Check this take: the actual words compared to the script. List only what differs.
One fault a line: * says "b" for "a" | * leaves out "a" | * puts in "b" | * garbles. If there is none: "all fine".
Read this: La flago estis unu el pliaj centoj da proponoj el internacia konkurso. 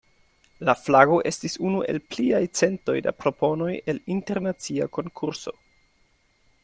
all fine